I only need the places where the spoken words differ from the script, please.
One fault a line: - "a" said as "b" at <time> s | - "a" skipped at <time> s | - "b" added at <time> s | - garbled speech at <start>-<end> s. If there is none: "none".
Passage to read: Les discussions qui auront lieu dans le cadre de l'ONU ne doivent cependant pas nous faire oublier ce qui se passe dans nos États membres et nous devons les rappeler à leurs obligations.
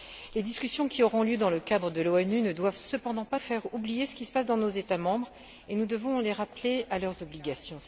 - "nous" skipped at 3.4 s